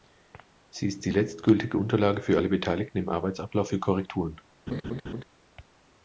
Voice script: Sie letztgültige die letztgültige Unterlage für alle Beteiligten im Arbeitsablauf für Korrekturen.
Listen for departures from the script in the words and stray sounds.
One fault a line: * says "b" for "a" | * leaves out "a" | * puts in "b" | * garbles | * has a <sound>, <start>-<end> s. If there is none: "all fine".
* says "ist" for "letztgültige"
* has a laugh, 4.7-5.2 s